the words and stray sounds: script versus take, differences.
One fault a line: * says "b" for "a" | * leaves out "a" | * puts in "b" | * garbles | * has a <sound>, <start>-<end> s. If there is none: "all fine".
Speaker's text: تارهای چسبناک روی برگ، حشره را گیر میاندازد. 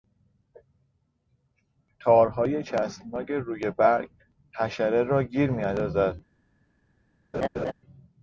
* has a laugh, 7.3-7.7 s